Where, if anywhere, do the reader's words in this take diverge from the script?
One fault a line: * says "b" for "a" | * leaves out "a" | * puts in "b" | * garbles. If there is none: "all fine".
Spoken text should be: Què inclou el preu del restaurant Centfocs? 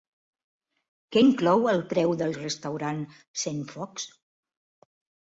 all fine